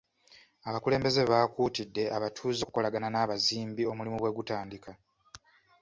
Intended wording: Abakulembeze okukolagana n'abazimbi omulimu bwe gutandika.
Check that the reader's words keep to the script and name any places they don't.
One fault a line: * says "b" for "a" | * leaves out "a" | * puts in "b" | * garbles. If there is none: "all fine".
* puts in "baakuutidde abatuuze"